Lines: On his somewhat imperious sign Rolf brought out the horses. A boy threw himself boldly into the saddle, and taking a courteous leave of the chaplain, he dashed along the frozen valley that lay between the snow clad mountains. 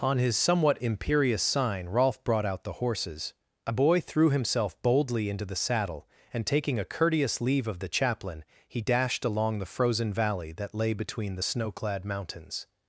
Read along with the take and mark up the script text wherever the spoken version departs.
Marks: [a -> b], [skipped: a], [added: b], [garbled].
On his somewhat imperious sign Rolf brought out the horses. A boy threw himself boldly into the saddle, and taking a courteous leave of the chaplain, he dashed along the frozen valley that lay between the snow clad mountains.